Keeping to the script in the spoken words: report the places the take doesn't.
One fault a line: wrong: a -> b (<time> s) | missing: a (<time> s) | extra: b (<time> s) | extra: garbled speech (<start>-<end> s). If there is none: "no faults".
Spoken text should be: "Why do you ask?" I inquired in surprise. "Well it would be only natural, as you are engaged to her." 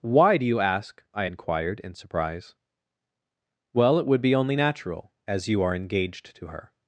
no faults